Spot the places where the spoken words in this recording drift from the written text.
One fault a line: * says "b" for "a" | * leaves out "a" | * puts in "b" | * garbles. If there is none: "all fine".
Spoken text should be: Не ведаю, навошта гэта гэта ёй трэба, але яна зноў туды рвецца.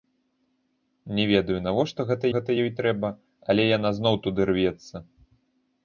all fine